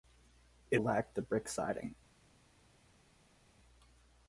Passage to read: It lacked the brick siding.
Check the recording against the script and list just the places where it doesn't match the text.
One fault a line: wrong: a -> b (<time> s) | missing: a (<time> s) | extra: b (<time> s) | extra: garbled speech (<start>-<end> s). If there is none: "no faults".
no faults